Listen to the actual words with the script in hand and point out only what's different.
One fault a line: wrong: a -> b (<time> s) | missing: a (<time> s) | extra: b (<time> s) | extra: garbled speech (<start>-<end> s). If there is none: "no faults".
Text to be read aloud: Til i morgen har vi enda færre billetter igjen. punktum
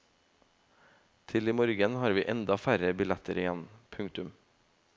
no faults